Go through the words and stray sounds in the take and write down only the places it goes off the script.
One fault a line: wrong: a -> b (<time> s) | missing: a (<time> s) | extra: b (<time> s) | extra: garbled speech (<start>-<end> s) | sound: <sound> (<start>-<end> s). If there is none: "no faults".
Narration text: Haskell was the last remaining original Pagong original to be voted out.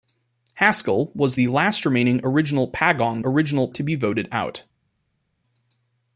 no faults